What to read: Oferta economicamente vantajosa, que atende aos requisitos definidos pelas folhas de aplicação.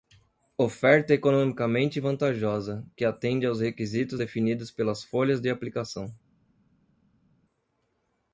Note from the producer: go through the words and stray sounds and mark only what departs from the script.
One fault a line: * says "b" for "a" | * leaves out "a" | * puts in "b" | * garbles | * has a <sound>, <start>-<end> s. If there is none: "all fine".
all fine